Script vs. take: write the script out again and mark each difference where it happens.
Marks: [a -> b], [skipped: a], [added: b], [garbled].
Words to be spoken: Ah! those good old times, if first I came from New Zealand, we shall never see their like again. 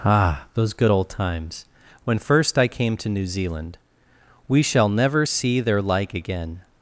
Ah! those good old times, [if -> when] first I came [from -> to] New Zealand, we shall never see their like again.